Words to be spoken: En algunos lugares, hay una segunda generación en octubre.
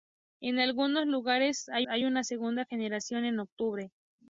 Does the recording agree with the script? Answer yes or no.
no